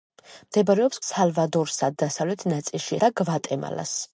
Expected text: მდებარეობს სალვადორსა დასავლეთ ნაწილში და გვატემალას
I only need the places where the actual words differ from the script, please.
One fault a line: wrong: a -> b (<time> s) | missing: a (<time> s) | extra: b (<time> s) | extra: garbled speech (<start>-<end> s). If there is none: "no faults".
no faults